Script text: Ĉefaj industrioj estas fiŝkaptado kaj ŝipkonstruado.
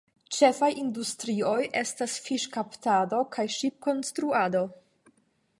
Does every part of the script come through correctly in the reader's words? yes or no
yes